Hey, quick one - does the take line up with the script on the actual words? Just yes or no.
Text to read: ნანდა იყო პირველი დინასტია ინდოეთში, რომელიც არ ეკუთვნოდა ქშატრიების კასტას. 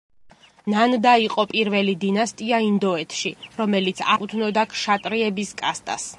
no